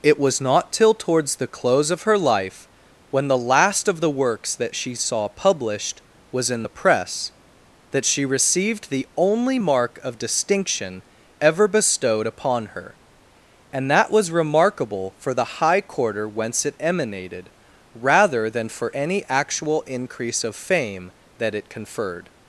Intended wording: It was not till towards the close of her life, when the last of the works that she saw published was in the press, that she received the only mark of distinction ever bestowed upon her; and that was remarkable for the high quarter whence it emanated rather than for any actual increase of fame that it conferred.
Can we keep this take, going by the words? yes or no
yes